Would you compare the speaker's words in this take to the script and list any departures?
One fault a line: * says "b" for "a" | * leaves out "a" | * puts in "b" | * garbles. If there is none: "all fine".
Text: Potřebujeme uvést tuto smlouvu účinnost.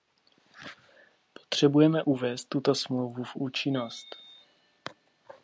* puts in "v"